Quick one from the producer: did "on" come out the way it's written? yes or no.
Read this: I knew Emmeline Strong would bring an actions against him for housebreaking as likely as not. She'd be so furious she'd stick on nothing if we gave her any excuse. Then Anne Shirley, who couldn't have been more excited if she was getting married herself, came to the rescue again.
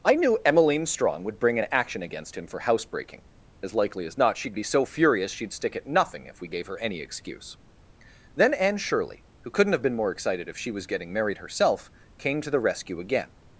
no